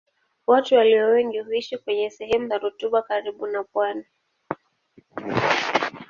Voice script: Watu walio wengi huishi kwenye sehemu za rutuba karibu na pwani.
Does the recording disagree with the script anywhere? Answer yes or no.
no